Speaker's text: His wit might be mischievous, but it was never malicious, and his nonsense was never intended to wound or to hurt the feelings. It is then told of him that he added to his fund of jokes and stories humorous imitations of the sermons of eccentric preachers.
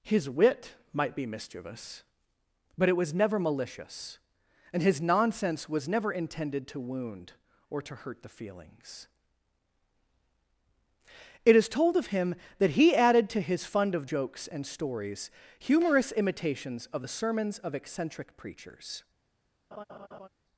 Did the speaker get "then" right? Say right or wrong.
wrong